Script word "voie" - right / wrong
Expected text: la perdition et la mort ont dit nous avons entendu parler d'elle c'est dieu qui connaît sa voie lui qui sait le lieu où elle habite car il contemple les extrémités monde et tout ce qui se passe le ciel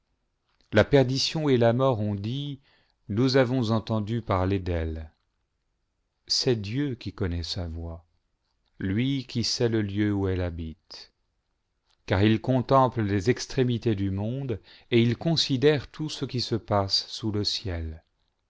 right